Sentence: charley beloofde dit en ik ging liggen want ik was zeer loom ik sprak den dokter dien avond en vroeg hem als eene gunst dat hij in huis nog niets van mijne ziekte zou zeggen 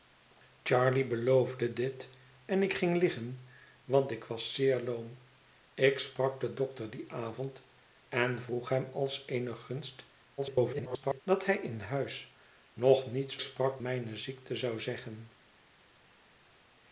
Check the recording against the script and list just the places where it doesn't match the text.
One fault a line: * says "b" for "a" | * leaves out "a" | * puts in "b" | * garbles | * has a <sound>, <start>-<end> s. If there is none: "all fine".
* garbles
* says "sprak" for "van"